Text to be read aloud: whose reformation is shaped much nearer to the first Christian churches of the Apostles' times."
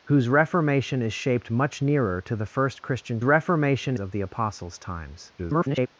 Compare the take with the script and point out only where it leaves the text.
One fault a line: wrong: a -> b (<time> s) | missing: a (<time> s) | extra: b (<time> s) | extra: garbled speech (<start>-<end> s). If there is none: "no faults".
wrong: churches -> reformation (3.2 s)
extra: garbled speech (5.4-5.9 s)